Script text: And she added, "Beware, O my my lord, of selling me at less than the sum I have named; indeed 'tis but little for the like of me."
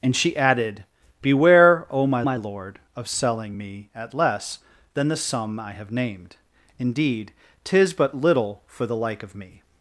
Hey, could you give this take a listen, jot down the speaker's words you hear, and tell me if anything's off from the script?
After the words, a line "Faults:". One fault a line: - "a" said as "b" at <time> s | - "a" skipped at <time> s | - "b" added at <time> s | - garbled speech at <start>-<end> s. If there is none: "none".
And she added, "Beware, O my my lord, of selling me at less than the sum I have named; indeed 'tis but little for the like of me."
Faults:
none